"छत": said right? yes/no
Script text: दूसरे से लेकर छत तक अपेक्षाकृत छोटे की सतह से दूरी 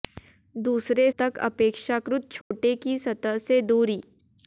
no